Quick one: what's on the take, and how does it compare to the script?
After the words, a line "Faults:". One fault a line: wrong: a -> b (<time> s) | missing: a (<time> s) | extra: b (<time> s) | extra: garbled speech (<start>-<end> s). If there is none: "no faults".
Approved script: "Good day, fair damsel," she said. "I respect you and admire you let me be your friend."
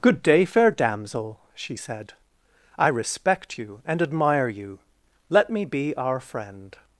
"Good day, fair damsel," she said. "I respect you and admire you let me be our friend."
Faults:
wrong: your -> our (6.0 s)